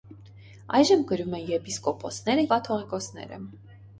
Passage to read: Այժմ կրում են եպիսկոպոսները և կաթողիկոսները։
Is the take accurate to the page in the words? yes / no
no